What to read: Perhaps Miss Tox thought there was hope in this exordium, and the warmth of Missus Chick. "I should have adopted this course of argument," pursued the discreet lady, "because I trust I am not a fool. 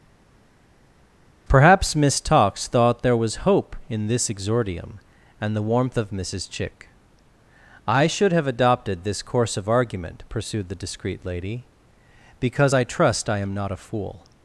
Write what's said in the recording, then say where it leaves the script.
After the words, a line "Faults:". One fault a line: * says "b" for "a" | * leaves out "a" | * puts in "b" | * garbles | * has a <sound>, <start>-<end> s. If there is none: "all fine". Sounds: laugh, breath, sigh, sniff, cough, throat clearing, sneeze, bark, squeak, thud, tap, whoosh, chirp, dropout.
Perhaps Miss Tox thought there was hope in this exordium, and the warmth of Missus Chick. "I should have adopted this course of argument," pursued the discreet lady, "because I trust I am not a fool.
Faults:
all fine